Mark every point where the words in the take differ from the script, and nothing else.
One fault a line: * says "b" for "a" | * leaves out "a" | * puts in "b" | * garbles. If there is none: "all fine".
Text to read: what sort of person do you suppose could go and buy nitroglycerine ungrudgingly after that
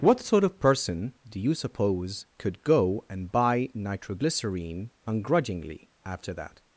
all fine